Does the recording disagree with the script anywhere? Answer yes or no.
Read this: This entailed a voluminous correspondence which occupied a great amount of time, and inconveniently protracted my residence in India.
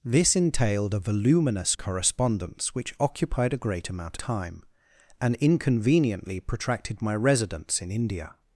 yes